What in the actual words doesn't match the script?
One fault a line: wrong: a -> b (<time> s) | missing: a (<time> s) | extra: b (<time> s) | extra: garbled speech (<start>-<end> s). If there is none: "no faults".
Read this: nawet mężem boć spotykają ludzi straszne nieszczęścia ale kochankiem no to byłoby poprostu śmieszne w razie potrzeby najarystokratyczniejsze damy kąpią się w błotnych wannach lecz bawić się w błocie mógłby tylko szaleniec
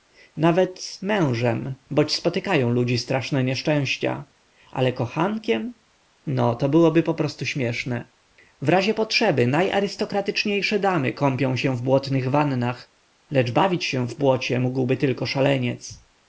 no faults